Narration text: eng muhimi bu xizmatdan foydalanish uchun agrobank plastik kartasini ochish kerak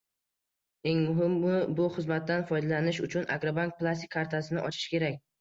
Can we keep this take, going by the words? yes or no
yes